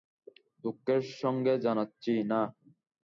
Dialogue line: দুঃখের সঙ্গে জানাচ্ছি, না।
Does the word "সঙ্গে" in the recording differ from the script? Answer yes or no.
no